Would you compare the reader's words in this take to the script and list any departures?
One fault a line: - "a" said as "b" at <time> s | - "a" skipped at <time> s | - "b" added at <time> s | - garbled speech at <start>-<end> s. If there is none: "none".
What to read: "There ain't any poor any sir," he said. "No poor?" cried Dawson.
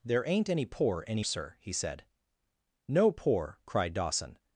none